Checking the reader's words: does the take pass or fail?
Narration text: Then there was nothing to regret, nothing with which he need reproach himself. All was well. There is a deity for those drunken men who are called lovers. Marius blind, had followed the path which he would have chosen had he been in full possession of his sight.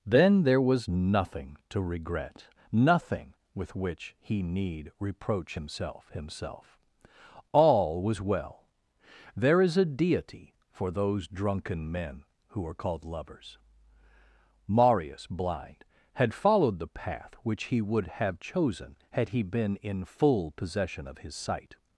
fail